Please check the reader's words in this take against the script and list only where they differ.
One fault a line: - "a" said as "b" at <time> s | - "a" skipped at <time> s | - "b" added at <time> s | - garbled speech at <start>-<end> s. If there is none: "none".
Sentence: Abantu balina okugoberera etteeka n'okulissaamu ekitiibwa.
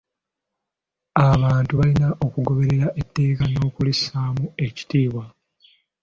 none